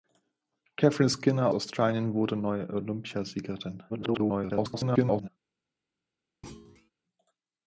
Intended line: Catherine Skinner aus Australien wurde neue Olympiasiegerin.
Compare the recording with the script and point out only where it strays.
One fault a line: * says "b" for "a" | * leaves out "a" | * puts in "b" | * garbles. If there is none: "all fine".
* leaves out "aus"
* garbles